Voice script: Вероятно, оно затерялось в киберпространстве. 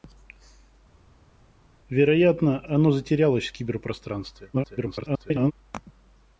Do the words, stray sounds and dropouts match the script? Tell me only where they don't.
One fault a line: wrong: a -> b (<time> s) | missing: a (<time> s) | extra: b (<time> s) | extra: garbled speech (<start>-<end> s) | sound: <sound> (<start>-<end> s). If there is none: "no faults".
extra: garbled speech (4.5-5.5 s)